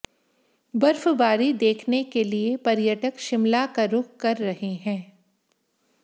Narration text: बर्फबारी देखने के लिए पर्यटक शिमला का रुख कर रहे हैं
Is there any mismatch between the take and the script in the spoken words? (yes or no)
no